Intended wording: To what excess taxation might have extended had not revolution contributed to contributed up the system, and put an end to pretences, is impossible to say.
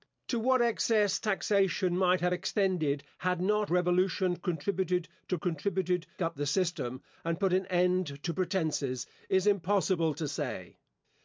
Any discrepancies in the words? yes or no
no